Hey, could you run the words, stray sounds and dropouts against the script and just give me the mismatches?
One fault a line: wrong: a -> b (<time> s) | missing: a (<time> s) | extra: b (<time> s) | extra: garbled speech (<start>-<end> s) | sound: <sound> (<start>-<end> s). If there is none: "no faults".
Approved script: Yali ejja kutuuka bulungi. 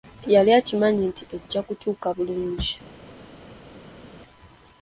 extra: akimanyi nti (0.6 s)